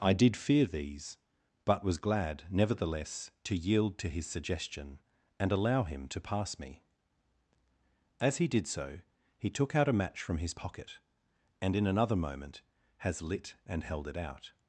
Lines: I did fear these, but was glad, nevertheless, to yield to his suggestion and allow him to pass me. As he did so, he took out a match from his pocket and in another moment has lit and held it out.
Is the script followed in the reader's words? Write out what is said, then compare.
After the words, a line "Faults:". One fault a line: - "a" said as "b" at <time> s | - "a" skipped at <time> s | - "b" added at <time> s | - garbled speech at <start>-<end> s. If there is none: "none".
I did fear these, but was glad, nevertheless, to yield to his suggestion and allow him to pass me. As he did so, he took out a match from his pocket and in another moment has lit and held it out.
Faults:
none